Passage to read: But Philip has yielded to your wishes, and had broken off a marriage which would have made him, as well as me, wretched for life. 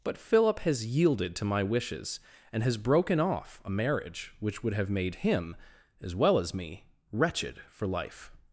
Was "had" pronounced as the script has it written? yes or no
no